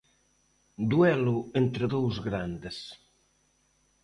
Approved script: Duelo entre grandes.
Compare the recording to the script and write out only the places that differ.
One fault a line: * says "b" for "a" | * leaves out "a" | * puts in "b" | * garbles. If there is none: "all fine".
* puts in "dous"